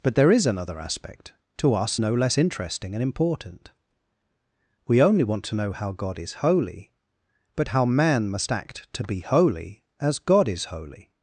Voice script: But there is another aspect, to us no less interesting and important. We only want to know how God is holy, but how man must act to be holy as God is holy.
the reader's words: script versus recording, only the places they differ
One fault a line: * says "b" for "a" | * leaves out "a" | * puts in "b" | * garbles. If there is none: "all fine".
all fine